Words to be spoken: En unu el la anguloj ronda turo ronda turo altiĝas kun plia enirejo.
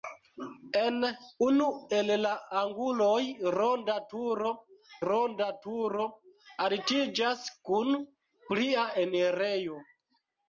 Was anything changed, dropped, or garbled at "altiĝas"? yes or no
no